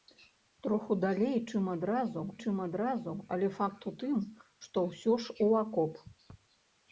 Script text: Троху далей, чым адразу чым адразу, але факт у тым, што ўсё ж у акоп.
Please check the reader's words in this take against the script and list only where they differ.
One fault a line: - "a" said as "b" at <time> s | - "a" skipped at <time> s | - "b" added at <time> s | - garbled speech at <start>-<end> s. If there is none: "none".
none